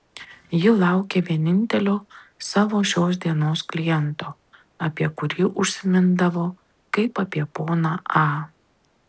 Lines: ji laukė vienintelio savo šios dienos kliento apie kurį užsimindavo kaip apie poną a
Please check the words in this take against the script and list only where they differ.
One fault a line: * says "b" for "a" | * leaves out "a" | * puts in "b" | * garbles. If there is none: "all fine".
all fine